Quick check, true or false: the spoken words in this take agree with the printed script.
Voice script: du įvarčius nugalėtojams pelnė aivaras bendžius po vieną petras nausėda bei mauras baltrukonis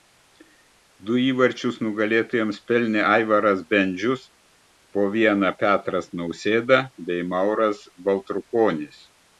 true